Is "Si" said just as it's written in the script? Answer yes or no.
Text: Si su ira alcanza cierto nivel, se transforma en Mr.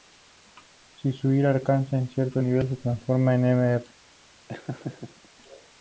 yes